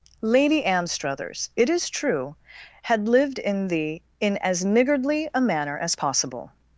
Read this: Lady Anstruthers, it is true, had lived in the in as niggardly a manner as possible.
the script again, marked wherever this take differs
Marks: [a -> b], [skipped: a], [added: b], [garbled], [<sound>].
Lady Anstruthers, it is true, had lived in the in as niggardly a manner as possible.